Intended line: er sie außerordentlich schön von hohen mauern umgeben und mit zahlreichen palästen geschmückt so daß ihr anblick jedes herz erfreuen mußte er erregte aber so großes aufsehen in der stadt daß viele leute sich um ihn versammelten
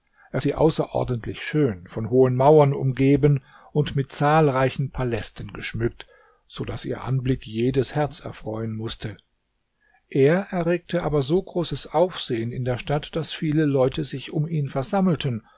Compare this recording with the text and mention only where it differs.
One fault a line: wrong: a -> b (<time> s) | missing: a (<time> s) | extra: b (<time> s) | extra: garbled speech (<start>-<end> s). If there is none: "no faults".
no faults